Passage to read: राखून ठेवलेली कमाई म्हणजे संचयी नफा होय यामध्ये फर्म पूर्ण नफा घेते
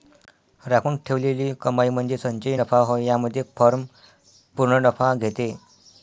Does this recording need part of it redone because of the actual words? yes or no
no